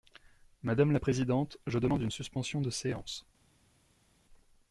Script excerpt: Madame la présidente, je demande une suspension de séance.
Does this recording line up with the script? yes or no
yes